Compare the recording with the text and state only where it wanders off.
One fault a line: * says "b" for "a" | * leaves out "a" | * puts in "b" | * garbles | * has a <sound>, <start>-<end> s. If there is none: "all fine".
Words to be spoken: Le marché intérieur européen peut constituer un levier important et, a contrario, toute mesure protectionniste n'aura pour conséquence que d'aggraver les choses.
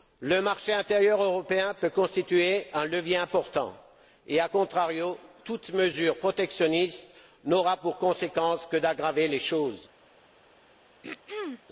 * has a throat clearing, 11.0-11.6 s